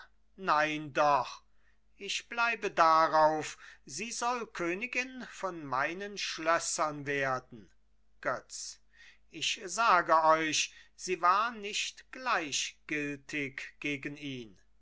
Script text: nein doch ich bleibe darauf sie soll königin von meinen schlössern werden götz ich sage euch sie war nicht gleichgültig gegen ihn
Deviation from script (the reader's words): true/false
false